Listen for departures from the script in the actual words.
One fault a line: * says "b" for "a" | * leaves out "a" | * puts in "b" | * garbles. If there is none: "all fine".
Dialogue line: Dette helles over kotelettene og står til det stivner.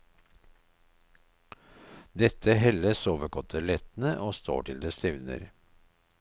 all fine